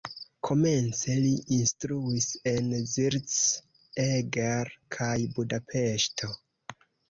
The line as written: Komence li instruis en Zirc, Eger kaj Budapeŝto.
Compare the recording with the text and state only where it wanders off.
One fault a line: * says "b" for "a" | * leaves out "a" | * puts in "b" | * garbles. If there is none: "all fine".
all fine